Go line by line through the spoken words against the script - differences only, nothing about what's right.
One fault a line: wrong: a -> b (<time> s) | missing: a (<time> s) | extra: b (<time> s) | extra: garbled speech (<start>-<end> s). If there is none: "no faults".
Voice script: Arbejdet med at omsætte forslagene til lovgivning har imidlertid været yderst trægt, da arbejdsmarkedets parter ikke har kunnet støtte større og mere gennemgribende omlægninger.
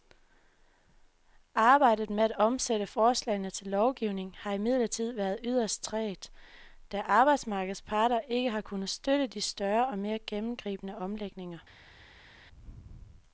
extra: de (9.3 s)